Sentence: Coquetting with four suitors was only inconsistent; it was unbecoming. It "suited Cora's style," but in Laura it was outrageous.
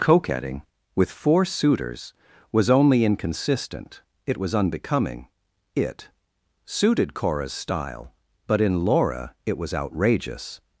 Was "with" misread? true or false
false